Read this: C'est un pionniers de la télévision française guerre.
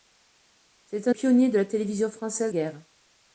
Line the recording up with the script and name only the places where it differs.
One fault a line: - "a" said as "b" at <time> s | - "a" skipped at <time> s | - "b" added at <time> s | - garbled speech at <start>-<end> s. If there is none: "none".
none